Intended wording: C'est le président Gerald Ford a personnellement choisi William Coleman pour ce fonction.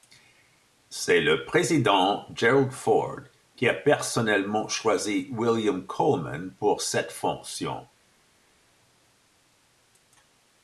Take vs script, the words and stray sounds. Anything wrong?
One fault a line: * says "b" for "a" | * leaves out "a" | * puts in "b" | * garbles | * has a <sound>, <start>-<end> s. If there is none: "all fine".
* puts in "qui"
* says "cette" for "ce"